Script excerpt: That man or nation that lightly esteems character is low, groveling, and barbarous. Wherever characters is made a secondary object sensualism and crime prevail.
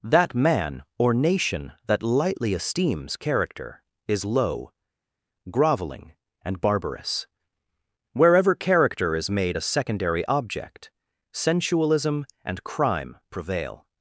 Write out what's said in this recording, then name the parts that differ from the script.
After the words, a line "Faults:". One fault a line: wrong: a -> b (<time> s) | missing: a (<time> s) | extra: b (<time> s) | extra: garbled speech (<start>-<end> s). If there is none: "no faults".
That man or nation that lightly esteems character is low, groveling, and barbarous. Wherever character is made a secondary object sensualism and crime prevail.
Faults:
wrong: characters -> character (8.5 s)